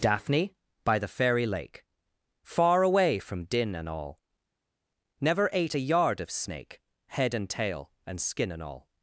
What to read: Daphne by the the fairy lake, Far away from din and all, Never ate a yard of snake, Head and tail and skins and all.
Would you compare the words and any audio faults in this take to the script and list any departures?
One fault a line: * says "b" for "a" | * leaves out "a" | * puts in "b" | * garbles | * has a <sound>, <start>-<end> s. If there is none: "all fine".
* leaves out "the"
* says "skin" for "skins"